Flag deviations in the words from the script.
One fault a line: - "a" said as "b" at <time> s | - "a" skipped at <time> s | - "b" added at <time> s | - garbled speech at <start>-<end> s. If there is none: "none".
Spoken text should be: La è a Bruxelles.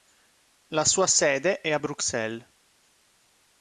- "sua sede" added at 0.8 s